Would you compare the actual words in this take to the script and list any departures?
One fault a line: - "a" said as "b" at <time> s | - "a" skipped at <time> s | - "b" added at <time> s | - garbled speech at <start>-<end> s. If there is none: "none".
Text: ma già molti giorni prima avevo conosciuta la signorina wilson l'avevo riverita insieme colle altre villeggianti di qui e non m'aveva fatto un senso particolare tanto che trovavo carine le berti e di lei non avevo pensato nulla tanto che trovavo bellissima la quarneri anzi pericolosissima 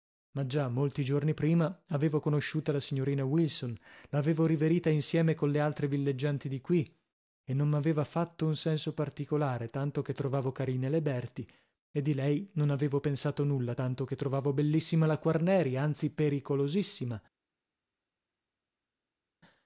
none